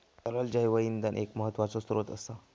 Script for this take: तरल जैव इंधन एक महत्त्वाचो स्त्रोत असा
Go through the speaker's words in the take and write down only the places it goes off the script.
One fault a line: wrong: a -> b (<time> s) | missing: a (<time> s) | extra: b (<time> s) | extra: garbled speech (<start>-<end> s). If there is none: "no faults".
no faults